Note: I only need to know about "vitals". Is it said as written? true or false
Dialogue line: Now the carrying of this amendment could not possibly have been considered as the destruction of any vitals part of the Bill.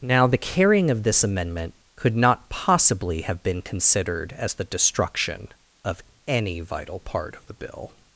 false